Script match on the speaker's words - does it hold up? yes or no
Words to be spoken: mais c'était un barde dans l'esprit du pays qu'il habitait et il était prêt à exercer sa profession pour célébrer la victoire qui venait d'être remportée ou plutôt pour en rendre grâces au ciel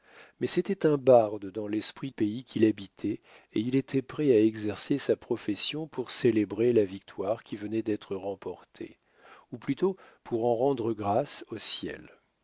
no